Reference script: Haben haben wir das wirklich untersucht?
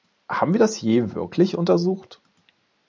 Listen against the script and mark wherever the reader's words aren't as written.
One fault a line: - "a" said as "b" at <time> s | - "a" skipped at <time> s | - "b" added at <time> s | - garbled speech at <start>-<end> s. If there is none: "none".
- "haben" skipped at 0.6 s
- "je" added at 0.8 s